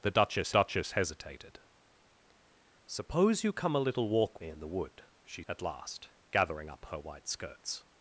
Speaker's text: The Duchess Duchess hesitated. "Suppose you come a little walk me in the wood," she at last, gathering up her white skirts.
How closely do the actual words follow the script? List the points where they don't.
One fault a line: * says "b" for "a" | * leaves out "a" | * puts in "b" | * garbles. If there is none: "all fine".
all fine